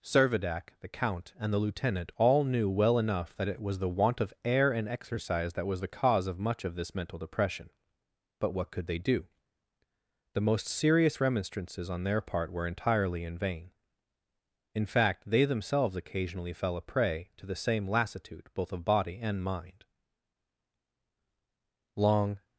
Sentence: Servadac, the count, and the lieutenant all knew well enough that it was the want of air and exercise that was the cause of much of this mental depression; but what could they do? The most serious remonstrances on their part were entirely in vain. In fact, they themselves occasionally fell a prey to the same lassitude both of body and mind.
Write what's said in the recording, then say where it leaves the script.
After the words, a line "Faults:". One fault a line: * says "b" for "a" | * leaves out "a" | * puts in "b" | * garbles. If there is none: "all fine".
Servadac, the count, and the lieutenant all knew well enough that it was the want of air and exercise that was the cause of much of this mental depression; but what could they do? The most serious remonstrances on their part were entirely in vain. In fact, they themselves occasionally fell a prey to the same lassitude both of body and mind. Long
Faults:
* puts in "Long"